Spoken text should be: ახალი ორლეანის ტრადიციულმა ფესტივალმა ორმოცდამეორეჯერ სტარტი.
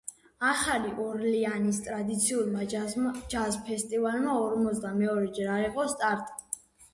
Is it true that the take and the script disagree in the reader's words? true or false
true